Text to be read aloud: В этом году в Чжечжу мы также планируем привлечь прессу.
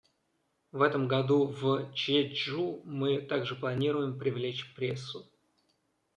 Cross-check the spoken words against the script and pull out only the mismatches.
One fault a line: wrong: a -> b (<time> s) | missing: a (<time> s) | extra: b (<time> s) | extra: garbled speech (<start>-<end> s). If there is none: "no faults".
no faults